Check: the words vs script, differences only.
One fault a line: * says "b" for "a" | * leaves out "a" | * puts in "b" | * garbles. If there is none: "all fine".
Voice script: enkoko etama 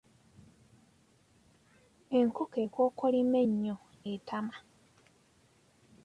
* puts in "ekookolima ennyo"